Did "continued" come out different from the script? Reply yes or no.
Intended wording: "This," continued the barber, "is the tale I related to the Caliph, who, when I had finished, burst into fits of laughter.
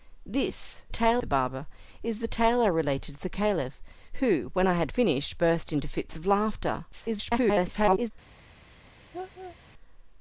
yes